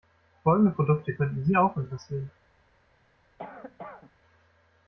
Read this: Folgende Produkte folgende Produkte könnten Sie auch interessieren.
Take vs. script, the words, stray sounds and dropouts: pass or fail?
fail